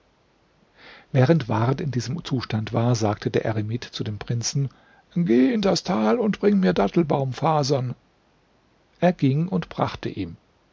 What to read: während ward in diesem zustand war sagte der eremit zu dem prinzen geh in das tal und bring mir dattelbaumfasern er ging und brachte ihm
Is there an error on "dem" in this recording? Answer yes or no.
no